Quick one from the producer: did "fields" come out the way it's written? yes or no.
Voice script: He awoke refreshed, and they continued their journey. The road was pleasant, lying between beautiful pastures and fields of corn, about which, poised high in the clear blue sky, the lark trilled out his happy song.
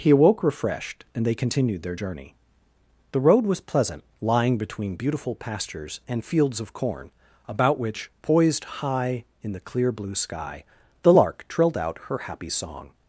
yes